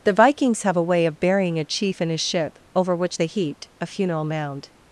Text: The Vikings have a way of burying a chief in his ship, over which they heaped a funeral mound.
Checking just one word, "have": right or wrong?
right